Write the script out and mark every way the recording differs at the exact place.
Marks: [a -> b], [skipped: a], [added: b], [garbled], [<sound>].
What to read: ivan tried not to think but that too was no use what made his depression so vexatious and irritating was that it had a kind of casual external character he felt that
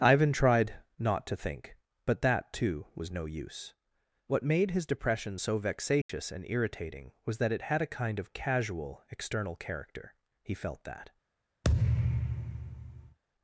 ivan tried not to think but that too was no use what made his depression so vexatious [dropout] and irritating was that it had a kind of casual external character he felt that [thud]